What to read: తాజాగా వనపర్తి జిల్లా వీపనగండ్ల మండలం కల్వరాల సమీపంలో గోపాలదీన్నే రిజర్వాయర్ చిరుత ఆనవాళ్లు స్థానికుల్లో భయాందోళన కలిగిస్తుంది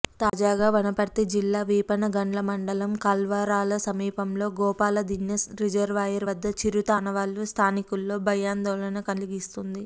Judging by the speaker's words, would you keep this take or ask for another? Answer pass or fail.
fail